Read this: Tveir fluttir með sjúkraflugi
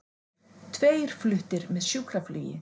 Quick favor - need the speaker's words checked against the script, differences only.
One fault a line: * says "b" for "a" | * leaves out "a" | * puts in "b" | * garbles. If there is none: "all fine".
all fine